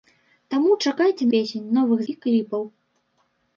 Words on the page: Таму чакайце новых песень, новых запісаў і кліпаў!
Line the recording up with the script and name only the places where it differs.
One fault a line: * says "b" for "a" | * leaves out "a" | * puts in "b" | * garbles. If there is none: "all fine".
* leaves out "новых"
* leaves out "запісаў"